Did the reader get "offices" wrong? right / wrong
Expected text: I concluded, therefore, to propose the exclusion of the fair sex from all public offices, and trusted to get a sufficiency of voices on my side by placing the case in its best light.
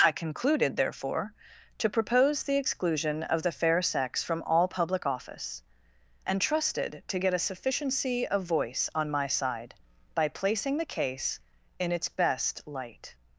wrong